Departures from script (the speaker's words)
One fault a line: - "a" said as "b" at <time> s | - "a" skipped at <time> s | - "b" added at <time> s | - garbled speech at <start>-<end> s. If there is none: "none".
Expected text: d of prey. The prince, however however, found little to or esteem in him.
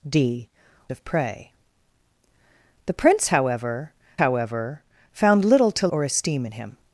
none